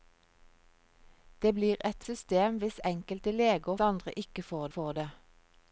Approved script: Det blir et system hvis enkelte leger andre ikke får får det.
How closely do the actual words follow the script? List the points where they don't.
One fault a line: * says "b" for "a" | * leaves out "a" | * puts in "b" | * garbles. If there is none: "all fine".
all fine